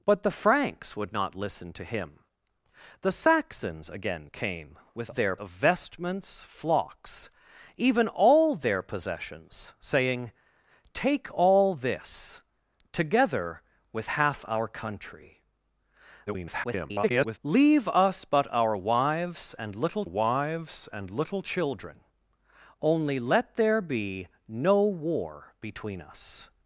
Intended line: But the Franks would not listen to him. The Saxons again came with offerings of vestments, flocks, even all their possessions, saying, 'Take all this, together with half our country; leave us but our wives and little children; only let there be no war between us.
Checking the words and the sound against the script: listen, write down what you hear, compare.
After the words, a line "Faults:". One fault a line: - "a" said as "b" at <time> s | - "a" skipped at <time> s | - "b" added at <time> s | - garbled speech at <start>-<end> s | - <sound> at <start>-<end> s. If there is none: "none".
But the Franks would not listen to him. The Saxons again came with their of vestments, flocks, even all their possessions, saying, 'Take all this, together with half our country; [garbled] leave us but our wives and little wives and little children; only let there be no war between us.
Faults:
- "offerings" said as "their" at 5.1 s
- garbled speech at 16.3-17.4 s
- "wives and little" added at 20.0 s